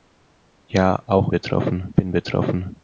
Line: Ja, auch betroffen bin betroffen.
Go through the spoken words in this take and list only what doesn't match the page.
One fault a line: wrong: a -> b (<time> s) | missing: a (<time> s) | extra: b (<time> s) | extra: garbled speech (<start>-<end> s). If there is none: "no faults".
no faults